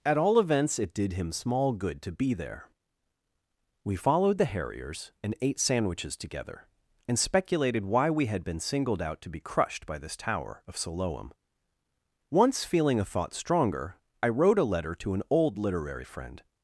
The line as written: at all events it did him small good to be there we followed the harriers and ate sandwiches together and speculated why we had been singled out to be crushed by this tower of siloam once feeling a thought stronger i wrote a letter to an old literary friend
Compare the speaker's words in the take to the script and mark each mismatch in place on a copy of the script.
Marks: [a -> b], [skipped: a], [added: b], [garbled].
at all events it did him small good to be there we followed the harriers and ate sandwiches together and speculated why we had been singled out to be crushed by this tower of siloam once feeling a thought stronger i wrote a letter to an old literary friend